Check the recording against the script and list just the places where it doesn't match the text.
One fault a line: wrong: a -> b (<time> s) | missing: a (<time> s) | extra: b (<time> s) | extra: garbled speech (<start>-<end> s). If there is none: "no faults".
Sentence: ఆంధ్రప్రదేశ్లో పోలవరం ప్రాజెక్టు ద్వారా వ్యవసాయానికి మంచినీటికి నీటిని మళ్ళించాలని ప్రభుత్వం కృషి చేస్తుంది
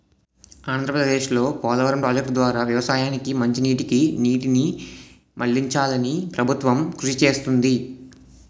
no faults